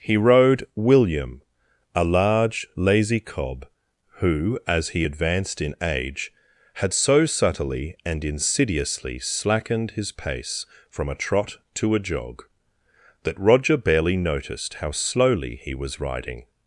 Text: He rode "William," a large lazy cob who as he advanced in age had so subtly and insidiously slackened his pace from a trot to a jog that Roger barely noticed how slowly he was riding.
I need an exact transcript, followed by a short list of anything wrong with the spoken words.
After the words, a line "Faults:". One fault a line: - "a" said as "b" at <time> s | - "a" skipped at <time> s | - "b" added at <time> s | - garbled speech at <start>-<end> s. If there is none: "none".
He rode "William," a large lazy cob who as he advanced in age had so subtly and insidiously slackened his pace from a trot to a jog that Roger barely noticed how slowly he was riding.
Faults:
none